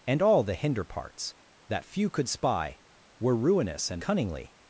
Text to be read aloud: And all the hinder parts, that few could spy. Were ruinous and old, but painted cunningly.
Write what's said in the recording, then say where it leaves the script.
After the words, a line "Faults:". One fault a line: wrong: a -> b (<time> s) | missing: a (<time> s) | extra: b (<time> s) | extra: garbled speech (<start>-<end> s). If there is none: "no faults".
And all the hinder parts, that few could spy. Were ruinous and cunningly.
Faults:
missing: old but painted (4.0 s)